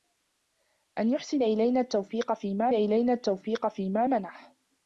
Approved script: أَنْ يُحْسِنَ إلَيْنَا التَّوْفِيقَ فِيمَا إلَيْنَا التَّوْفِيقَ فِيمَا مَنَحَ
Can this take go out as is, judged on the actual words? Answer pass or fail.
pass